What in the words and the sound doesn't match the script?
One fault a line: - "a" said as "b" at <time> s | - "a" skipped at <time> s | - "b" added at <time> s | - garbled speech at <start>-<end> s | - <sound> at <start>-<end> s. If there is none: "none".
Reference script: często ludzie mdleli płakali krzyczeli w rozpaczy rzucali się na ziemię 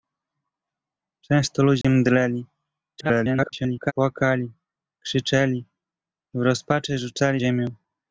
- dropout at 1.8-1.8 s
- garbled speech at 3.0-3.9 s
- "się na" skipped at 7.4 s